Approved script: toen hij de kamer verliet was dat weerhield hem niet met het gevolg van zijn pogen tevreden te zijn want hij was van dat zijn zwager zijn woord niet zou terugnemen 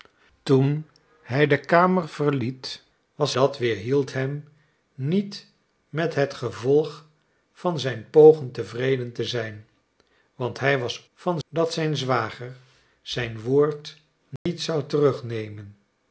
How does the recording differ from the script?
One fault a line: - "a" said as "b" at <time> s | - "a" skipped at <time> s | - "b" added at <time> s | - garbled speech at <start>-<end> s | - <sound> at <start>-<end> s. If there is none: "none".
- dropout at 14.4-14.5 s